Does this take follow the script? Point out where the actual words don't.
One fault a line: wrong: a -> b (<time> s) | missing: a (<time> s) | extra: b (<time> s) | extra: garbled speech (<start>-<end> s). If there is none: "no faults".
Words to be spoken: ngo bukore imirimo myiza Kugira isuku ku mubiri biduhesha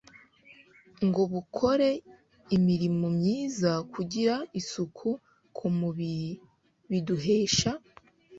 no faults